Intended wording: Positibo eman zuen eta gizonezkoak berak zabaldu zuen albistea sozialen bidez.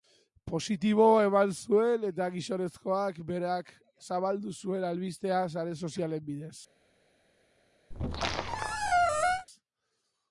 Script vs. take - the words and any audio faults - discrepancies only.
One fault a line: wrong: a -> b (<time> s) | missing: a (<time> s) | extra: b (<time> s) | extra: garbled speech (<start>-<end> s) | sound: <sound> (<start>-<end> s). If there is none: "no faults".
extra: sare (5.5 s)
sound: squeak (7.9-9.5 s)